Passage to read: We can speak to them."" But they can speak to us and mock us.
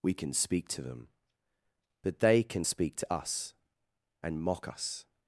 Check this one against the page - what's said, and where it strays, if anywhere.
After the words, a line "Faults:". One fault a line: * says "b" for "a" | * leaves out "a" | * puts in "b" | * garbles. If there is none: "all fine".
We can speak to them."" But they can speak to us and mock us.
Faults:
all fine